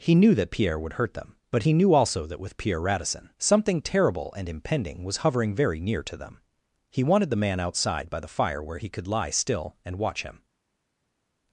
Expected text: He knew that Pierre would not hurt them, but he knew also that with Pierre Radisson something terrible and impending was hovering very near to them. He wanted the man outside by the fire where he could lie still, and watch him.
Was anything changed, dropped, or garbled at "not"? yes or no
yes